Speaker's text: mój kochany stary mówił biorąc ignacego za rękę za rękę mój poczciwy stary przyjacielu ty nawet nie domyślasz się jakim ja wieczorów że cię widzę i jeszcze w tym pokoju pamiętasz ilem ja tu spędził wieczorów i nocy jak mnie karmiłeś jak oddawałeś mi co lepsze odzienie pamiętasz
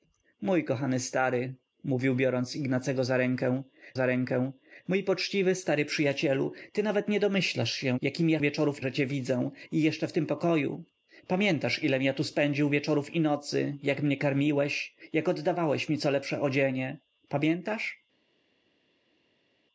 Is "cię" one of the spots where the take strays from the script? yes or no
no